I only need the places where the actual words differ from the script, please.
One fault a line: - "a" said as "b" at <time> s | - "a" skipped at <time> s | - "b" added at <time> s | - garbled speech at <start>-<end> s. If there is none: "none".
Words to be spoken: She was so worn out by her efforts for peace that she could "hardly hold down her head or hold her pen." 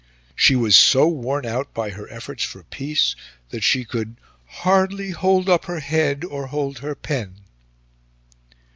- "down" said as "up" at 5.5 s